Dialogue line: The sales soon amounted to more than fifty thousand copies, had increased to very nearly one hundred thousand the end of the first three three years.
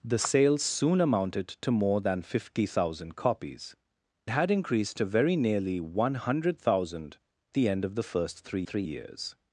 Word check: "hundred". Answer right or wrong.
right